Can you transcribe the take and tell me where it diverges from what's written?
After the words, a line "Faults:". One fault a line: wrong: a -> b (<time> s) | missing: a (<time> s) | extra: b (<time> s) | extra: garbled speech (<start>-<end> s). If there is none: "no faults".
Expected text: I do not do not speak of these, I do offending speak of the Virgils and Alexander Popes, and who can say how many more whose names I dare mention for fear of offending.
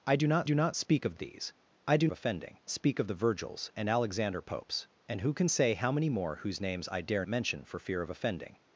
I do not do not speak of these, I do offending speak of the Virgils and Alexander Popes, and who can say how many more whose names I dare mention for fear of offending.
Faults:
no faults